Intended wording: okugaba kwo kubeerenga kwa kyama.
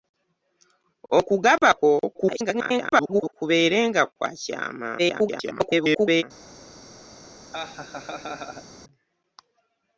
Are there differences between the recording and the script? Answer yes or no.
yes